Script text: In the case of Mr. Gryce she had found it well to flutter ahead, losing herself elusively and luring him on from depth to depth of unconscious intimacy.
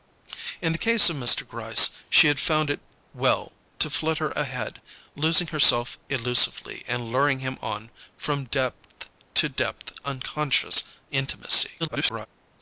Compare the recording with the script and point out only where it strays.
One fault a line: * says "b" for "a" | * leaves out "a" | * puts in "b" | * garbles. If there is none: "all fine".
* leaves out "of"
* garbles